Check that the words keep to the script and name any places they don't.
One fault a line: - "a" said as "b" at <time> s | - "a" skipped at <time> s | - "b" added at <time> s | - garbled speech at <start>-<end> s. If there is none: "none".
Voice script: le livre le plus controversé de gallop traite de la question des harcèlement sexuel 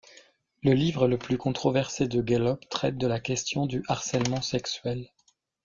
- "des" said as "du" at 3.7 s